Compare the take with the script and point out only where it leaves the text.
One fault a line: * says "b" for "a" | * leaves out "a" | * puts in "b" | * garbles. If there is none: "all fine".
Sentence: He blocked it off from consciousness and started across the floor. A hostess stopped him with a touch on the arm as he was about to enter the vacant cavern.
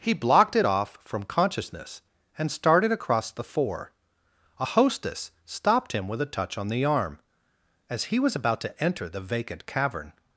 * says "four" for "floor"